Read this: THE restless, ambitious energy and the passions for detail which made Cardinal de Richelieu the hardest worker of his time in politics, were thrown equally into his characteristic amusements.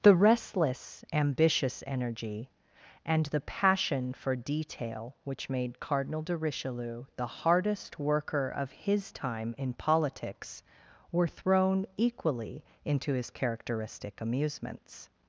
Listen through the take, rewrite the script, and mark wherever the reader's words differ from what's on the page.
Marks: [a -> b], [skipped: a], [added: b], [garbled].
THE restless, ambitious energy and the [passions -> passion] for detail which made Cardinal de Richelieu the hardest worker of his time in politics, were thrown equally into his characteristic amusements.